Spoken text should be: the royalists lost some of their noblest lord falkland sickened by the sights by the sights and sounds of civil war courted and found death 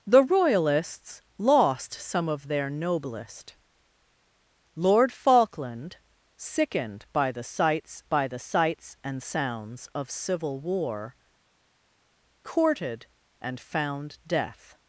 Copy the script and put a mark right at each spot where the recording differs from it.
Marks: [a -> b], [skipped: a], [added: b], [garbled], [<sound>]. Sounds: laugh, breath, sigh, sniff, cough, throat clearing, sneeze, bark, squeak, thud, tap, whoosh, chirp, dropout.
the royalists lost some of their noblest lord falkland sickened by the sights by the sights and sounds of civil war courted and found death